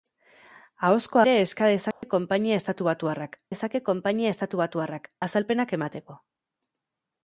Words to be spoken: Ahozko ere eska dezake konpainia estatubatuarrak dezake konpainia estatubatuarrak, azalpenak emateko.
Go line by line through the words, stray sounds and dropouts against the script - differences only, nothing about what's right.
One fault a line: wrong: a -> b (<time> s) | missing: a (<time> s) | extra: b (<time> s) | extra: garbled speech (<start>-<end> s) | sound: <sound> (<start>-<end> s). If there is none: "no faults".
sound: dropout (1.9-2.0 s)